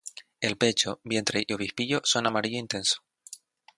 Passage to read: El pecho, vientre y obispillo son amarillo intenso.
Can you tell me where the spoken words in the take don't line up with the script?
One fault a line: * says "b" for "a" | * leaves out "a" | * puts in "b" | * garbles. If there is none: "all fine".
all fine